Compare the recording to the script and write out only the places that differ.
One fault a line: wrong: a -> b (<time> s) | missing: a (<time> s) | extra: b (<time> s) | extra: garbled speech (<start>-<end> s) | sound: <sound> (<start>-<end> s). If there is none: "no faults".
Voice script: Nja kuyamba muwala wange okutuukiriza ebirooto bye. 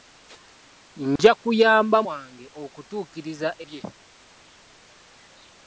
sound: dropout (1.2-1.2 s)
missing: muwala (2.0 s)
missing: ebirooto (3.5 s)